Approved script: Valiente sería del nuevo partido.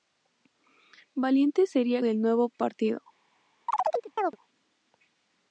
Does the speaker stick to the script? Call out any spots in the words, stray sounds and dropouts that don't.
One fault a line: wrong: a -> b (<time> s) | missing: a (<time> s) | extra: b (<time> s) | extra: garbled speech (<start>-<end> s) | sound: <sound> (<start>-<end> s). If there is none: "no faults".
sound: chirp (3.7-4.4 s)